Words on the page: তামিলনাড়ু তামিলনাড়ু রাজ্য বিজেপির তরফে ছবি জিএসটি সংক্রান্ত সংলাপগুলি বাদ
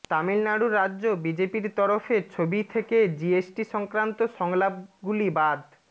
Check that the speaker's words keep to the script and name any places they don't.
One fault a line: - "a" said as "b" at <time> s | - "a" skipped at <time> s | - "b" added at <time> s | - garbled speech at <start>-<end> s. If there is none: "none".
- "তামিলনাড়ু" skipped at 0.7 s
- "থেকে" added at 2.7 s